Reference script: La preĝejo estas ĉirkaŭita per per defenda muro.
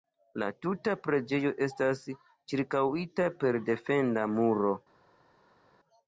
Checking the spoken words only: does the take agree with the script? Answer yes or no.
no